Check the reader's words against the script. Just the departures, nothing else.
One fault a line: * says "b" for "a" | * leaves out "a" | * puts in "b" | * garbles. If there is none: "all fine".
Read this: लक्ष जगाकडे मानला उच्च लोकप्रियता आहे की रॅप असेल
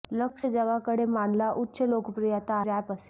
* leaves out "आहे की"